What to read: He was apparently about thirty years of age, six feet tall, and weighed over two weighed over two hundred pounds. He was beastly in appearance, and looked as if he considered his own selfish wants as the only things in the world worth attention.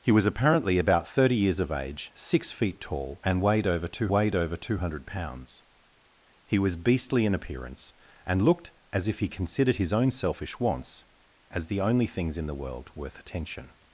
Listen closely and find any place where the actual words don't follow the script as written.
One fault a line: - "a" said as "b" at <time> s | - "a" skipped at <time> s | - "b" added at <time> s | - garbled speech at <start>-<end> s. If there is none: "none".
none